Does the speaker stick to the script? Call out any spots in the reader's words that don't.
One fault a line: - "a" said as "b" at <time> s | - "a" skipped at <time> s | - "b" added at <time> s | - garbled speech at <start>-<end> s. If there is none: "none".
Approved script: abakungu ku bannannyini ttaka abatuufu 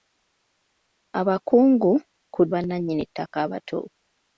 none